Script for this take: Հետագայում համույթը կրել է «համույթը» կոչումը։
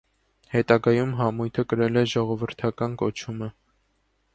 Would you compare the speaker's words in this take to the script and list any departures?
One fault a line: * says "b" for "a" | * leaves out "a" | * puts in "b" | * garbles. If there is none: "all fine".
* says "ժողովրդական" for "համույթը"